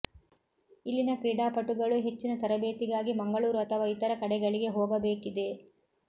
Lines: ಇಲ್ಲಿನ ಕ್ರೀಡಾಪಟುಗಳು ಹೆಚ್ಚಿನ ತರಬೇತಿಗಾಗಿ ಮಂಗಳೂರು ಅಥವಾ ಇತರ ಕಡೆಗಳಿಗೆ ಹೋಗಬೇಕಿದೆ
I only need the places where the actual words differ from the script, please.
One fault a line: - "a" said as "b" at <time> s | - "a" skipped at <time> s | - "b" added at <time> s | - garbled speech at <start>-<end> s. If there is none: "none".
none